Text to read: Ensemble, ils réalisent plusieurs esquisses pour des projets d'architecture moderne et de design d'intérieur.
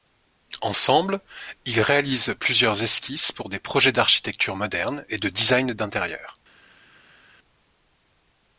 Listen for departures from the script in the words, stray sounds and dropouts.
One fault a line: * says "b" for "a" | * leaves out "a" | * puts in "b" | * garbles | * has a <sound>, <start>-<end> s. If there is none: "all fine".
all fine